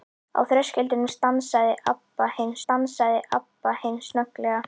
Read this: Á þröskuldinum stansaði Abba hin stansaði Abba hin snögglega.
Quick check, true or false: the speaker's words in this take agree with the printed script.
true